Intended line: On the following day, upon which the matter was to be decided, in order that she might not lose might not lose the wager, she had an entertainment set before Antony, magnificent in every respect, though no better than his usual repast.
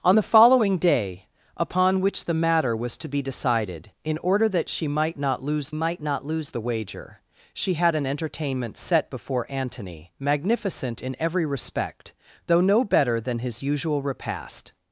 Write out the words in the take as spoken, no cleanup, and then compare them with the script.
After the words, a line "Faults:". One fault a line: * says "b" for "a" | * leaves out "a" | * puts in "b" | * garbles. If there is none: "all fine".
On the following day, upon which the matter was to be decided, in order that she might not lose might not lose the wager, she had an entertainment set before Antony, magnificent in every respect, though no better than his usual repast.
Faults:
all fine